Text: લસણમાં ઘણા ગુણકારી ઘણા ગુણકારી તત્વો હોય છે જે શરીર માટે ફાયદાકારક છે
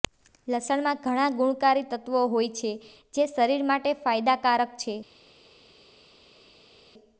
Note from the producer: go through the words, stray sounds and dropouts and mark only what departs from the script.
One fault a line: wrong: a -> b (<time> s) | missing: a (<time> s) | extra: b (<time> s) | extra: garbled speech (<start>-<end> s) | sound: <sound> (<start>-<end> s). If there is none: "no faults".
missing: ઘણા ગુણકારી (1.9 s)